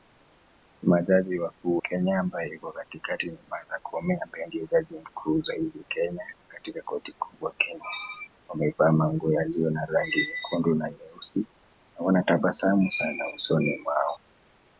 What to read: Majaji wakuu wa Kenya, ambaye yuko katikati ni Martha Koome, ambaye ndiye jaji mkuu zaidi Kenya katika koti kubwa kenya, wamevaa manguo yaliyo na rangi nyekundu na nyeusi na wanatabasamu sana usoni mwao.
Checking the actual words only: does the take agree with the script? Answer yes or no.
no